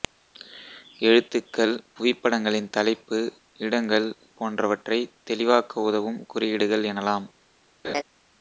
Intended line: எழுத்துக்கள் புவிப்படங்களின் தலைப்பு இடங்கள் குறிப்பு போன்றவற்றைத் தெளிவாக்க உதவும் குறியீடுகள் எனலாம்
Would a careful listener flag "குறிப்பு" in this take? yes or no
yes